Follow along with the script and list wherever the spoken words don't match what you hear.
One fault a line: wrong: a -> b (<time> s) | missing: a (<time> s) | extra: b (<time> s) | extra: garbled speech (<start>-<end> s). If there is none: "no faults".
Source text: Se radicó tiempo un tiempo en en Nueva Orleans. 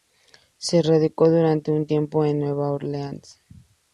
wrong: tiempo -> durante (1.3 s)
missing: en (2.4 s)